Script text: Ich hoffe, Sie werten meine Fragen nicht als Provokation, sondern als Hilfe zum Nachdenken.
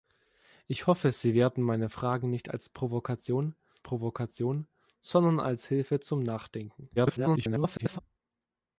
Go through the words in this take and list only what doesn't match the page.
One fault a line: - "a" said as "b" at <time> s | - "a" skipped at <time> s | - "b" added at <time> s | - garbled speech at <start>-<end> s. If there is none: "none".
- "Provokation" added at 3.8 s
- garbled speech at 7.0-8.0 s